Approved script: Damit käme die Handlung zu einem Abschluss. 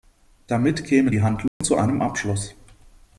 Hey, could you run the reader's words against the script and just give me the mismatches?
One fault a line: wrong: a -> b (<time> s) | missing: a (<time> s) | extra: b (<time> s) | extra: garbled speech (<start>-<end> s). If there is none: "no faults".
no faults